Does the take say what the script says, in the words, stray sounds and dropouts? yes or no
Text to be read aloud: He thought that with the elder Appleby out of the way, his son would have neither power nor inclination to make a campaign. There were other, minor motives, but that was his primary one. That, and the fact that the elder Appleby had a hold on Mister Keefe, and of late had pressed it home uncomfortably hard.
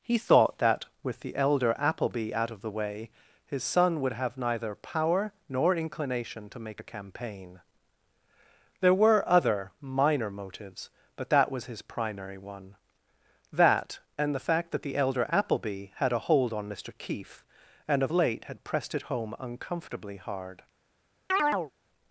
no